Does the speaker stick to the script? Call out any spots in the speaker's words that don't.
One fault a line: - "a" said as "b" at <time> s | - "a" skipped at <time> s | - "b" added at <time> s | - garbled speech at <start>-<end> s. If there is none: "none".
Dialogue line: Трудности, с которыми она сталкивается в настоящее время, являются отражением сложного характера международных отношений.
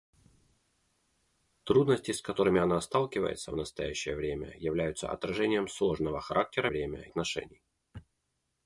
- "международных" said as "время" at 6.7 s